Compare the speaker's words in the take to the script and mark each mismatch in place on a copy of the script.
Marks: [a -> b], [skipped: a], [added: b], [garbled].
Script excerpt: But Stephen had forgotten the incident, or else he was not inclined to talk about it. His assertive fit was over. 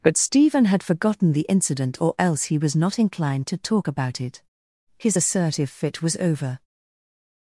But Stephen had forgotten the incident, or else he was not inclined to talk about it. His assertive fit was over.